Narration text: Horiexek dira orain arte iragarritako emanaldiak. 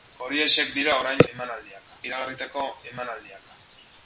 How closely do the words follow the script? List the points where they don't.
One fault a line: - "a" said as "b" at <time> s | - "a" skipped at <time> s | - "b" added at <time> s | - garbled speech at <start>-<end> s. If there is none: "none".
- "arte" said as "emanaldiak" at 1.3 s